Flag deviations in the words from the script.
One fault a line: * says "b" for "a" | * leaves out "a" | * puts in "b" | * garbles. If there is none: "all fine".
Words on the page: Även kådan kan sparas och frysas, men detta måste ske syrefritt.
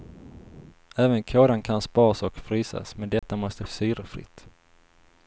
* leaves out "ske"